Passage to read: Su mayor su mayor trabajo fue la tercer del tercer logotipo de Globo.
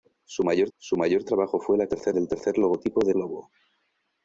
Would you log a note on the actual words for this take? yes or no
no